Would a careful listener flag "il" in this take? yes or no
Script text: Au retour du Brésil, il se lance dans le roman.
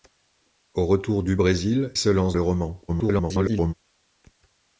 yes